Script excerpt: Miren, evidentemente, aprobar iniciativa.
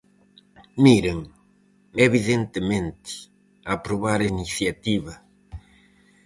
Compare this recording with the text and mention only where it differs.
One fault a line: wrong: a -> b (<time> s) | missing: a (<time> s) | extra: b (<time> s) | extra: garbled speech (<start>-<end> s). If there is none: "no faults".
no faults